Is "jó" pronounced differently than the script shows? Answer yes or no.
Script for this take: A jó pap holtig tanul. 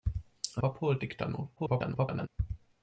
yes